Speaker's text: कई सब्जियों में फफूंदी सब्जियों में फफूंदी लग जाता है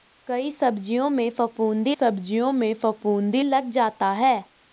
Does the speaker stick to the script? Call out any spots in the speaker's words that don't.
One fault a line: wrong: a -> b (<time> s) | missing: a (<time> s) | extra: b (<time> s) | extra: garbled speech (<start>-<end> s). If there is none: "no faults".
no faults